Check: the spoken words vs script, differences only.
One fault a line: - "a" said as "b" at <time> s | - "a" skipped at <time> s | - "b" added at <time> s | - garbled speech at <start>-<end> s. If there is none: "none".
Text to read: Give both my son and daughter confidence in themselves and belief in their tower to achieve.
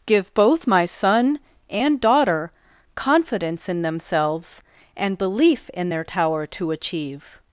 none